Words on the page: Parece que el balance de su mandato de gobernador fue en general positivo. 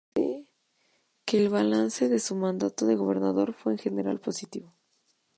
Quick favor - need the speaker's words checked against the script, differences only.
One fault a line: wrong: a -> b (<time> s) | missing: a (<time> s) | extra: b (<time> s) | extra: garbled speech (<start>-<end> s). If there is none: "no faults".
no faults